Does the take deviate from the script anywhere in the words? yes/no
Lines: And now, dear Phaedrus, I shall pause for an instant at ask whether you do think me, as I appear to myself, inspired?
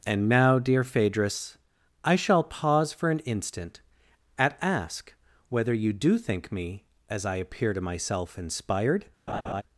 no